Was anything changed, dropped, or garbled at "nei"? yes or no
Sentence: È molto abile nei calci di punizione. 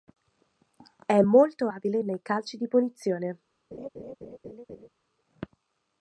no